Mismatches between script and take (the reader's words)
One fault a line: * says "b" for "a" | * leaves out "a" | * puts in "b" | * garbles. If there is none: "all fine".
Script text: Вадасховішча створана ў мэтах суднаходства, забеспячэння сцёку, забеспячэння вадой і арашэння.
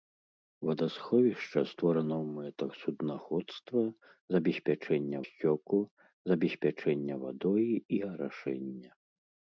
all fine